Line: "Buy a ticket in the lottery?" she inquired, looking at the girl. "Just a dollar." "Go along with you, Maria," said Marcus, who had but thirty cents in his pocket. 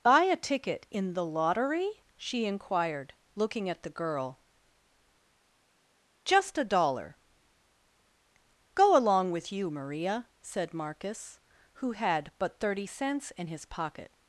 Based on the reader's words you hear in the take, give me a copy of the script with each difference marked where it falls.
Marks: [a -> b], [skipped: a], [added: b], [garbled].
"Buy a ticket in the lottery?" she inquired, looking at the girl. "Just a dollar." "Go along with you, Maria," said Marcus, who had but thirty cents in his pocket.